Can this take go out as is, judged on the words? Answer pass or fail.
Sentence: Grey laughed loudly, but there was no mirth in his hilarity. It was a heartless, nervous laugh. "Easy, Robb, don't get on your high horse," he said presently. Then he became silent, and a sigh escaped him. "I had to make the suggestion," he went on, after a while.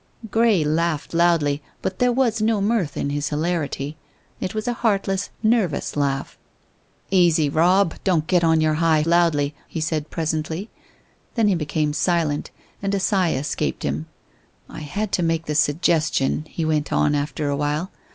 fail